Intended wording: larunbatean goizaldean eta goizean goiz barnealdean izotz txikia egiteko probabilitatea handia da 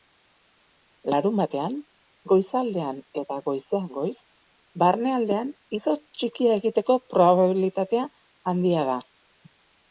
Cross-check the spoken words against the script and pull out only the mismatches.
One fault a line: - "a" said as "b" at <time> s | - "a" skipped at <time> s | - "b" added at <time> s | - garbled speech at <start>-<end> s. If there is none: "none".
none